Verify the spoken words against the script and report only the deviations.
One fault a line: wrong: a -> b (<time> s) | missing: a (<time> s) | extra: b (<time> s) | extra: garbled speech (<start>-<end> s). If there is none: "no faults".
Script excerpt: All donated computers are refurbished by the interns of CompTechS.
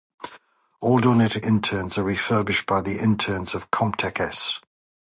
wrong: computers -> interns (1.4 s)